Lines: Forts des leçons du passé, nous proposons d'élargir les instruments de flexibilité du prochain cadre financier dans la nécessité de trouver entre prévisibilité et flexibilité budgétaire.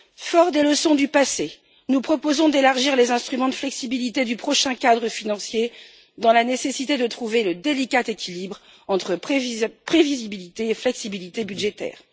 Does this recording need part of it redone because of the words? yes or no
yes